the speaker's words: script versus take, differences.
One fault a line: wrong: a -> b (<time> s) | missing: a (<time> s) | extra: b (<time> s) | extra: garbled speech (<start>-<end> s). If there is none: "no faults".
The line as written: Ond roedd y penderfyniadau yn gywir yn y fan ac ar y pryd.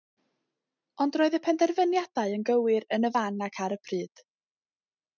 no faults